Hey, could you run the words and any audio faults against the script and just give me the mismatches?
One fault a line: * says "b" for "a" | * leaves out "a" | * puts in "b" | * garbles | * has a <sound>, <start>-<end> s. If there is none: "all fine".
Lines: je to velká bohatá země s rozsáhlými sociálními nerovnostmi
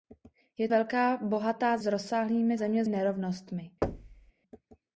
* leaves out "to"
* leaves out "země"
* says "země" for "sociálními"
* has a thud, 3.8-4.3 s